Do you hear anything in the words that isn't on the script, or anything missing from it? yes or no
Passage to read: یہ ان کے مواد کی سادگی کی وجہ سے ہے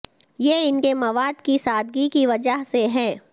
no